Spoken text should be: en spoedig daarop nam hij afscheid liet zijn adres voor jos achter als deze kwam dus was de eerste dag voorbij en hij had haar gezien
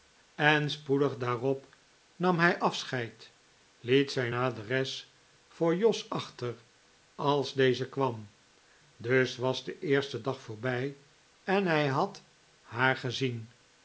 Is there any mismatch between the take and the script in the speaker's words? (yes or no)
no